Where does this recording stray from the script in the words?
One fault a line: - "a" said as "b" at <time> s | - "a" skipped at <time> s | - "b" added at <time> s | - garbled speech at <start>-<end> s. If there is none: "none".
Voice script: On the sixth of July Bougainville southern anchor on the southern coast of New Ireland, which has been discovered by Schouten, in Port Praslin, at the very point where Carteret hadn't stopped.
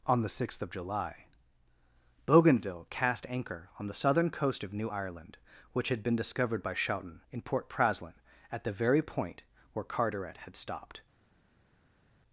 - "southern" said as "cast" at 2.9 s
- "has" said as "had" at 5.9 s
- "hadn't" said as "had" at 10.4 s